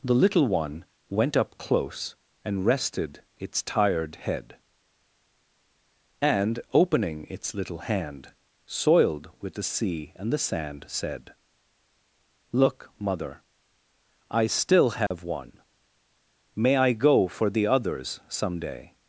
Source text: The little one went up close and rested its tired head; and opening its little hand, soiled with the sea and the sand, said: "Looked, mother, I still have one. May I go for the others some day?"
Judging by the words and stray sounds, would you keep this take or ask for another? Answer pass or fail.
fail